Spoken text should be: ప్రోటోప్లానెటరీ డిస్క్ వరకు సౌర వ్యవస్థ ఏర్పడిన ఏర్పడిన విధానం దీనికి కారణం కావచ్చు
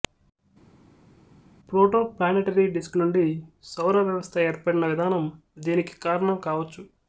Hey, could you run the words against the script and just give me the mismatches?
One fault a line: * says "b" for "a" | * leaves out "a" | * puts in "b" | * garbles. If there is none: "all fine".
* says "నుండి" for "వరకు"
* leaves out "ఏర్పడిన"